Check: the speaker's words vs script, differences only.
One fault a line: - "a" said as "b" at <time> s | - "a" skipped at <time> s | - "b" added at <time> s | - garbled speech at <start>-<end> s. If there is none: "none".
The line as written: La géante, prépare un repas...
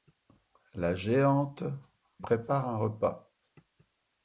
none